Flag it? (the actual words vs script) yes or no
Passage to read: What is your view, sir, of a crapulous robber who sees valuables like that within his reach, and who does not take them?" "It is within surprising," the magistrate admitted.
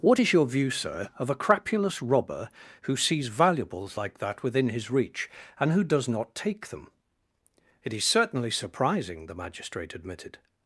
yes